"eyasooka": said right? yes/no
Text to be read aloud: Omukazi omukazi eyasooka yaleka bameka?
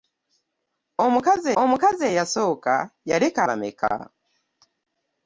yes